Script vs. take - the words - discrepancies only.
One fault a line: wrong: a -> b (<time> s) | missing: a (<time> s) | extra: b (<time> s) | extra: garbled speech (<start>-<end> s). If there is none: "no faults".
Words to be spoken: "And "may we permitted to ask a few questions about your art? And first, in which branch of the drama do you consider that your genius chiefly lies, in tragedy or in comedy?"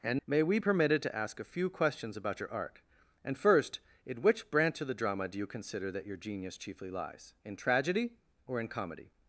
no faults